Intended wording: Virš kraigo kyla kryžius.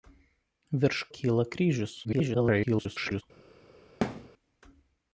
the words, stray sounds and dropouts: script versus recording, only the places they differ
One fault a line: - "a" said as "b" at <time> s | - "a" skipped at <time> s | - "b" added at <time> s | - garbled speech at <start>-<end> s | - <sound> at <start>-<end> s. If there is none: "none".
- "kraigo" skipped at 1.0 s
- garbled speech at 2.0-3.2 s
- thud at 4.0-4.3 s